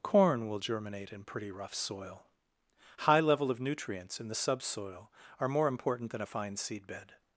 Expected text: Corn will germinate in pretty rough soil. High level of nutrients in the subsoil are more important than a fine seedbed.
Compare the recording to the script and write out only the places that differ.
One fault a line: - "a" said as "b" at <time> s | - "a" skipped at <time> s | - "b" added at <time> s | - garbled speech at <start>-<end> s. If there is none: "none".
none